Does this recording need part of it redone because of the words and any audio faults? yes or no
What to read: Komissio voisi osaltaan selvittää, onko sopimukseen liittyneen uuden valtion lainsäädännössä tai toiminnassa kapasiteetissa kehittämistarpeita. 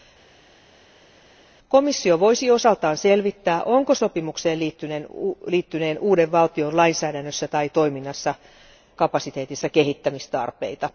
no